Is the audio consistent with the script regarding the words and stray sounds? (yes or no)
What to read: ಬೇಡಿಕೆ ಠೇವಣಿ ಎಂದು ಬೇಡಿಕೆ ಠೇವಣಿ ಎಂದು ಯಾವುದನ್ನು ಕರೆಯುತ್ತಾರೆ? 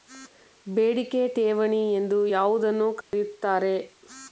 no